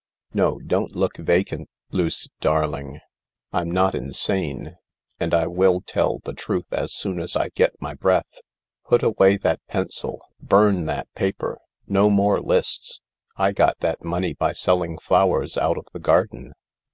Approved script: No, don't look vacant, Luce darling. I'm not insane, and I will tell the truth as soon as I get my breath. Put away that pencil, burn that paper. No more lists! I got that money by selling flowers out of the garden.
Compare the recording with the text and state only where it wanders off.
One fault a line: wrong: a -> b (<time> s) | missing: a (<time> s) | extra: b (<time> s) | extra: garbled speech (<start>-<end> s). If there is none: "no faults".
no faults